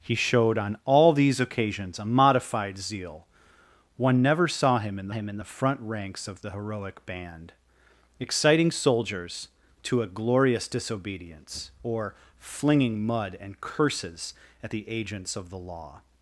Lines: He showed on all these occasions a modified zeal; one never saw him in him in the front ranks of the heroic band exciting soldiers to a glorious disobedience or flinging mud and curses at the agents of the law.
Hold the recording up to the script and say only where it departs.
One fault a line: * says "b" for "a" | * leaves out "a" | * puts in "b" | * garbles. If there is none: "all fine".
all fine